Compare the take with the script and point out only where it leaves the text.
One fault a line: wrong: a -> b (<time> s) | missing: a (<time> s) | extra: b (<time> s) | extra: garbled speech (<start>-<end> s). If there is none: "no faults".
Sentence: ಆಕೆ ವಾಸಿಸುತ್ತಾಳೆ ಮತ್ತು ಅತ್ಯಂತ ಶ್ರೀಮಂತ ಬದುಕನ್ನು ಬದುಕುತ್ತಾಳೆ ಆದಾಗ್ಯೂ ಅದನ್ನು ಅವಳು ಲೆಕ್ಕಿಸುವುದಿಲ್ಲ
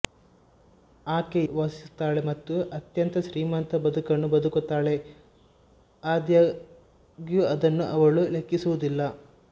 no faults